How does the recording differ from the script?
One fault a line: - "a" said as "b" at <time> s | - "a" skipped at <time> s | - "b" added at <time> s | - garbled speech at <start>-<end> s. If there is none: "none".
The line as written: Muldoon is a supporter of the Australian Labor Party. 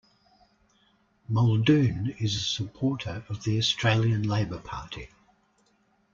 none